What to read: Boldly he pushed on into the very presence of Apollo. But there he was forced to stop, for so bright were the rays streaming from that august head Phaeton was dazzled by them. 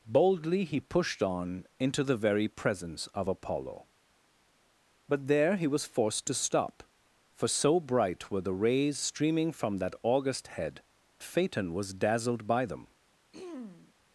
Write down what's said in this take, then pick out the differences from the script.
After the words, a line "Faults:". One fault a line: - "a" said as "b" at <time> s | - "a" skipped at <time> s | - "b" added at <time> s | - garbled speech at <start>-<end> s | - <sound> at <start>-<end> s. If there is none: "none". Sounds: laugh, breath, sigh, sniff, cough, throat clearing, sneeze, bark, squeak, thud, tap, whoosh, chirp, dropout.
Boldly he pushed on into the very presence of Apollo. But there he was forced to stop, for so bright were the rays streaming from that august head Phaeton was dazzled by them.
Faults:
- throat clearing at 13.3-13.9 s